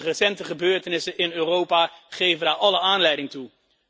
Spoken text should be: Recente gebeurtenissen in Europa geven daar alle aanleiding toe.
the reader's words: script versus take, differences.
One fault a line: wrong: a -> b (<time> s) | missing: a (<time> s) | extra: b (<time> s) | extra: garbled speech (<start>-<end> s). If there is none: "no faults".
no faults